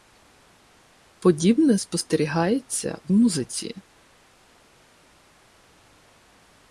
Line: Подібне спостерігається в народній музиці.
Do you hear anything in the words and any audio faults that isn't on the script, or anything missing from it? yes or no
yes